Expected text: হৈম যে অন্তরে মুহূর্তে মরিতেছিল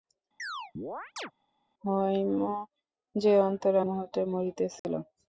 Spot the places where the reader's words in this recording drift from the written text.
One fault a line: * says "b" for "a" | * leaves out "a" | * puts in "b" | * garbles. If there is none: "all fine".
all fine